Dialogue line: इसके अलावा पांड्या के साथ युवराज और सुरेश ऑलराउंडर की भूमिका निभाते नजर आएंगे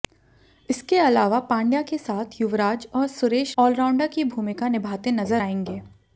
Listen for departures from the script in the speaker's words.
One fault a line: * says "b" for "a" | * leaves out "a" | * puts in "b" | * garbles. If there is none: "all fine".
all fine